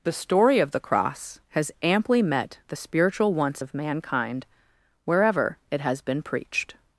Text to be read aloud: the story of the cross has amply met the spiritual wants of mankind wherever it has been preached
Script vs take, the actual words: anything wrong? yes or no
no